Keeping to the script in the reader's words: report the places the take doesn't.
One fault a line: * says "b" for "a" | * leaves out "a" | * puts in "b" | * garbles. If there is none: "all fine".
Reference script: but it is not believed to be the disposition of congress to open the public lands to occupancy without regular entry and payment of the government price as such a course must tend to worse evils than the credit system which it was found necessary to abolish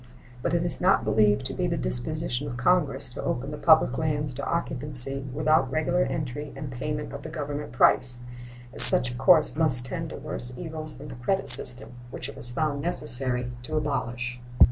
all fine